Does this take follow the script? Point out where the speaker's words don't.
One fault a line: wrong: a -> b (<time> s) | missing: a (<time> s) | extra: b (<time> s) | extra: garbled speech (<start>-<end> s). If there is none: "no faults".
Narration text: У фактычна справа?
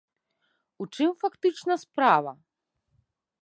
extra: чым (0.9 s)